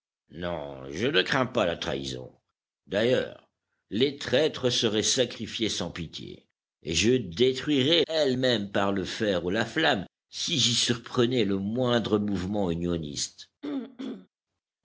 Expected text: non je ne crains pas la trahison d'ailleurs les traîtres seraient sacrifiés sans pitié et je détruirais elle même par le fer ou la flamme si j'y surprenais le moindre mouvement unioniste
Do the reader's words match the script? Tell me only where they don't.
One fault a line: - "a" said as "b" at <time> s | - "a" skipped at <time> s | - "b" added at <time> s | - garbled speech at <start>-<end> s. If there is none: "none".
none